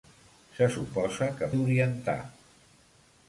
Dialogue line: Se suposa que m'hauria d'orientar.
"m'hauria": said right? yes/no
no